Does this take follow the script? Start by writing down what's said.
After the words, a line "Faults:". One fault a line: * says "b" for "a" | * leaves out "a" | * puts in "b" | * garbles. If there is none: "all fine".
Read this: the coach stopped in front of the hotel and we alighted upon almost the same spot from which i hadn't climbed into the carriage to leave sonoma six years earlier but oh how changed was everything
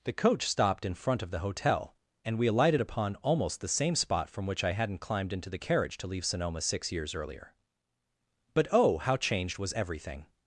the coach stopped in front of the hotel and we alighted upon almost the same spot from which i hadn't climbed into the carriage to leave sonoma six years earlier but oh how changed was everything
Faults:
all fine